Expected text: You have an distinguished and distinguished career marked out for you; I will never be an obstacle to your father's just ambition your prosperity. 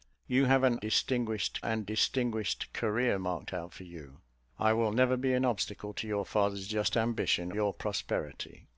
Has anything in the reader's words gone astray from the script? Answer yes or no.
no